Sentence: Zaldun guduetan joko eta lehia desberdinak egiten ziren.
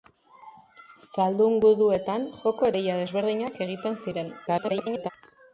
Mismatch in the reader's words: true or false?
true